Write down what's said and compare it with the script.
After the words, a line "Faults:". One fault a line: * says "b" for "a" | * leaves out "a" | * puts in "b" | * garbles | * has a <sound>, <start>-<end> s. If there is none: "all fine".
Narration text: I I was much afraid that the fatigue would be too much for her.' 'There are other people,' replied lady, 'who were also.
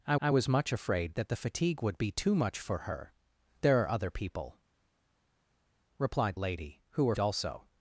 I I was much afraid that the fatigue would be too much for her.' 'There are other people,' replied lady, 'who were also.
Faults:
all fine